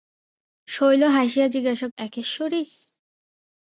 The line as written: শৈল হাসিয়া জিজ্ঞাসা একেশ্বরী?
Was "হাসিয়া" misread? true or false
false